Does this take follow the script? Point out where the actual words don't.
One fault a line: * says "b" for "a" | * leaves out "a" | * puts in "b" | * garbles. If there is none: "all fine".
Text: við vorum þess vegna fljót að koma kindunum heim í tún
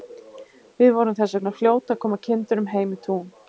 all fine